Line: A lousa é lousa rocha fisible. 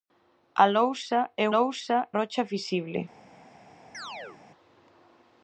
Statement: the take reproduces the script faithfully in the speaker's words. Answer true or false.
true